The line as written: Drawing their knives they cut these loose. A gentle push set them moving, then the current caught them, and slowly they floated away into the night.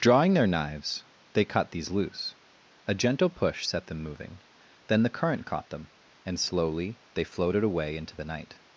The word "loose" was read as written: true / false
true